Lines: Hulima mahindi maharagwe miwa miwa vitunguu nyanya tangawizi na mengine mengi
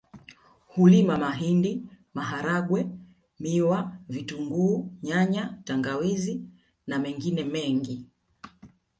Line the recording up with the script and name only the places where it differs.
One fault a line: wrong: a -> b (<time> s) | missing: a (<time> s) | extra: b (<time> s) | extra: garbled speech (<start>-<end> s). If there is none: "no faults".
missing: miwa (4.0 s)